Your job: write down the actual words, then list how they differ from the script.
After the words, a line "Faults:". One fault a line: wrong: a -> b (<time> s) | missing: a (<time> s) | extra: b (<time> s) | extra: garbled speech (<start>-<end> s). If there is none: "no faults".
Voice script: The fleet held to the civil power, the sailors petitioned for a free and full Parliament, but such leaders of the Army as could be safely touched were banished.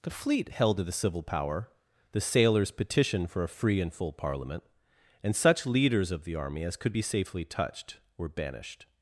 The fleet held to the civil power, the sailors petitioned for a free and full Parliament, and such leaders of the Army as could be safely touched were banished.
Faults:
wrong: but -> and (5.2 s)